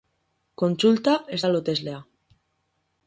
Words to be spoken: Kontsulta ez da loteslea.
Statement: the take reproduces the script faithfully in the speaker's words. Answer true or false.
true